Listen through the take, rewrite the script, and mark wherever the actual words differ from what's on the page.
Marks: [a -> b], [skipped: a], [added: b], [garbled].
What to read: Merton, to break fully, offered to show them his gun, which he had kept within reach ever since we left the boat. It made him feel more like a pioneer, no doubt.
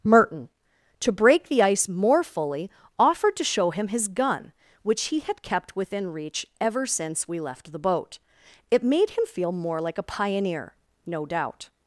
Merton, to break [added: the ice more] fully, offered to show [them -> him] his gun, which he had kept within reach ever since we left the boat. It made him feel more like a pioneer, no doubt.